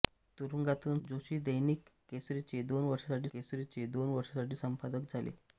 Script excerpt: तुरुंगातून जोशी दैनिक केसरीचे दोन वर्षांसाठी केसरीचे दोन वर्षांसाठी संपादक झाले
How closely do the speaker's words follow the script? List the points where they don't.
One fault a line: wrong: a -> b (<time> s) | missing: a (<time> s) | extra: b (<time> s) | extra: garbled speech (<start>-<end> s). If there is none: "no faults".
no faults